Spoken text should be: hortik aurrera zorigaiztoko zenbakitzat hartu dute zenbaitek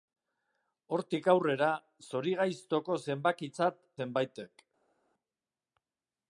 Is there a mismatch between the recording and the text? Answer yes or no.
yes